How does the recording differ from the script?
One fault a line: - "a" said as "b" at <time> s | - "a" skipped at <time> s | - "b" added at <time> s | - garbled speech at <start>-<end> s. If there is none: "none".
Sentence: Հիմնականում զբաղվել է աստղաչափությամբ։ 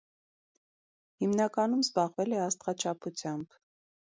none